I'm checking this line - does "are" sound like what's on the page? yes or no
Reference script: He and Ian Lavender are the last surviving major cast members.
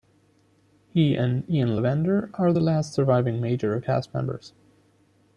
yes